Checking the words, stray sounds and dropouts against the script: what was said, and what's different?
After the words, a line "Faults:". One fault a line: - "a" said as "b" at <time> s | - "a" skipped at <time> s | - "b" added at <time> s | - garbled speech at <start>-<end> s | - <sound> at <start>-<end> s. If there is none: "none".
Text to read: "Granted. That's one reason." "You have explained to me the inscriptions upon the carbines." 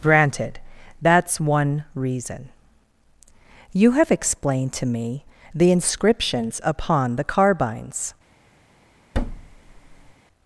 "Granted. That's one reason." "You have explained to me the inscriptions upon the carbines."
Faults:
- thud at 9.1-10.1 s